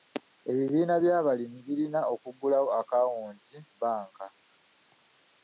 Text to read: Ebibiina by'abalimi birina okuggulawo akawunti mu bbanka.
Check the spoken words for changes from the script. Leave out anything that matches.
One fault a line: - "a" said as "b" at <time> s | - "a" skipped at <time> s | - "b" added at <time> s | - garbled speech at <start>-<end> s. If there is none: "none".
- "mu" skipped at 3.5 s